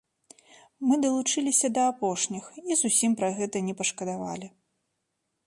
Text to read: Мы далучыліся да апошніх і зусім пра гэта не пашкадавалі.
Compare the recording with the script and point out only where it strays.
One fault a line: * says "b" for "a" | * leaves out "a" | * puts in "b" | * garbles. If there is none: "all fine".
all fine